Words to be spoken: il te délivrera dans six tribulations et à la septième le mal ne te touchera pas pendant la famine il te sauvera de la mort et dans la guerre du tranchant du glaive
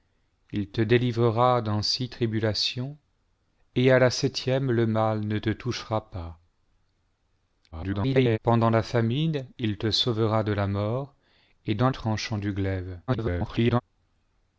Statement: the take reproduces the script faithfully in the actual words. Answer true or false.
false